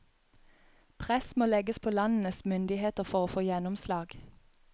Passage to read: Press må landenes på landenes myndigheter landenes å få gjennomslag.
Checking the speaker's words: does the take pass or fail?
fail